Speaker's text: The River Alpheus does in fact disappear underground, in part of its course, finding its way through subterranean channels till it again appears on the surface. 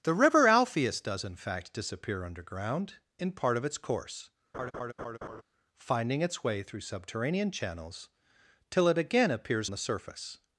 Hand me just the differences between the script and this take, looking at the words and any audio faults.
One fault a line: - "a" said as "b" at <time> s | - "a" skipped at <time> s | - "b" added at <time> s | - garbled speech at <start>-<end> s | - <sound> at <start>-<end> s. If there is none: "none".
- laugh at 4.5-5.4 s
- "on" skipped at 9.7 s